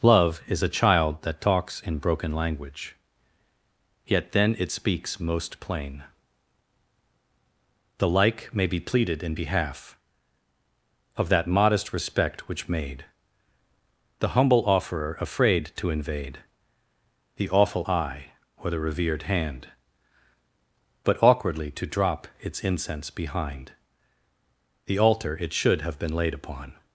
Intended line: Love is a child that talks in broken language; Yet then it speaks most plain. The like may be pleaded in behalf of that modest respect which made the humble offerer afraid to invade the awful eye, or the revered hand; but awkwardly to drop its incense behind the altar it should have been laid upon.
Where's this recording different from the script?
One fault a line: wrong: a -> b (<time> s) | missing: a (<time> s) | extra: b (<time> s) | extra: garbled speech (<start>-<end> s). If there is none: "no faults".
no faults